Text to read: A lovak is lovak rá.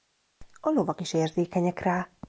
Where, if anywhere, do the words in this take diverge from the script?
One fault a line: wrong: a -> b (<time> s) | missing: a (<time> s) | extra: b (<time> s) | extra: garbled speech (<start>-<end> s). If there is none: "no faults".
wrong: lovak -> érzékenyek (1.1 s)